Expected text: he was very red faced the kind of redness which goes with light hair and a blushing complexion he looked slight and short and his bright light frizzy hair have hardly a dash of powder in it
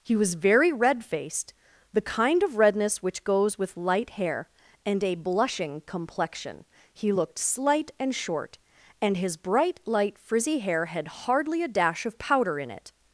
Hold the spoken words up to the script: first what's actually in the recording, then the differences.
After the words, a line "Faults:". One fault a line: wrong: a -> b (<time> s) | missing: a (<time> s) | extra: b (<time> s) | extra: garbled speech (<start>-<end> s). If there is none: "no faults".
he was very red faced the kind of redness which goes with light hair and a blushing complexion he looked slight and short and his bright light frizzy hair had hardly a dash of powder in it
Faults:
wrong: have -> had (10.9 s)